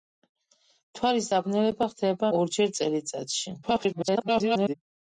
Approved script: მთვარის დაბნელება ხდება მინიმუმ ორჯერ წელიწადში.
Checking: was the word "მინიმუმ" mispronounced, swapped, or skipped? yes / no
yes